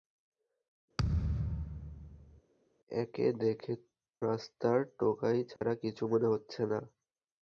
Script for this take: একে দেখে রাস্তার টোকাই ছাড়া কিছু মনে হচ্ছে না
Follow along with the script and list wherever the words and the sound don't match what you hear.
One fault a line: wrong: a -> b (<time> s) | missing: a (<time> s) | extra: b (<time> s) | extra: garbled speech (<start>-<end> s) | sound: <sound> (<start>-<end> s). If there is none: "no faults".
sound: thud (1.0-2.4 s)
sound: dropout (5.6-5.6 s)